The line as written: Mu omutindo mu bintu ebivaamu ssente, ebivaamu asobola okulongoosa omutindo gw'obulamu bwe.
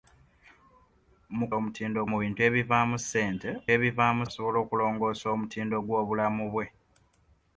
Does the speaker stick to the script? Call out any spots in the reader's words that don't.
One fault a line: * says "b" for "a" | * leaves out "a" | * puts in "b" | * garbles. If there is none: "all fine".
all fine